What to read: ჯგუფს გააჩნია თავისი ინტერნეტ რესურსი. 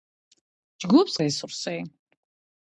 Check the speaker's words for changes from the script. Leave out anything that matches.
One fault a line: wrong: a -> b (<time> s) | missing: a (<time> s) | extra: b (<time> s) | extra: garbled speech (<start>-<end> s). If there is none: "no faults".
missing: გააჩნია თავისი ინტერნეტ (1.2 s)